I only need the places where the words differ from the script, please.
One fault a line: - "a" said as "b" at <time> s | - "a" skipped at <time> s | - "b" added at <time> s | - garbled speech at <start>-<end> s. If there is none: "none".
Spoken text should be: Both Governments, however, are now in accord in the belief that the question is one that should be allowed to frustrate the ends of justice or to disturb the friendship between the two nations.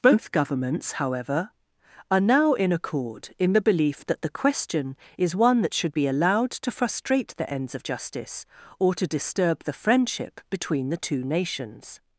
none